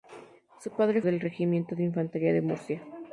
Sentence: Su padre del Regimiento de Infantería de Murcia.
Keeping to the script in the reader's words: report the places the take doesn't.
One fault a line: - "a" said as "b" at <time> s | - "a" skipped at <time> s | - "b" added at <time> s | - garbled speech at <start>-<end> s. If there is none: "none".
none